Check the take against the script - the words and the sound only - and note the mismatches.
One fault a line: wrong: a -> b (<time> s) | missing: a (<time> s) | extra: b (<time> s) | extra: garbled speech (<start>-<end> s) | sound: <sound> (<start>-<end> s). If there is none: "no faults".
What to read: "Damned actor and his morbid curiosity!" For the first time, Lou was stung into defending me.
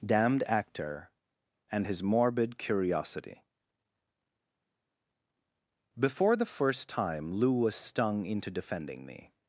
wrong: For -> Before (6.0 s)